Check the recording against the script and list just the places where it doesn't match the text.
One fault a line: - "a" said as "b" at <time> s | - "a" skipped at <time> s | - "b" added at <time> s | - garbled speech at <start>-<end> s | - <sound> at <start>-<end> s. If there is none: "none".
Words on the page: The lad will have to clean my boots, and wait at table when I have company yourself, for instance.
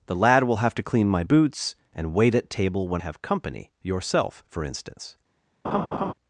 - "I" skipped at 3.0 s
- laugh at 5.6-6.1 s